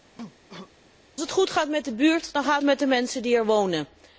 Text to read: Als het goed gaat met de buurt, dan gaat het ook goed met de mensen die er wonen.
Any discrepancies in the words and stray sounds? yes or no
yes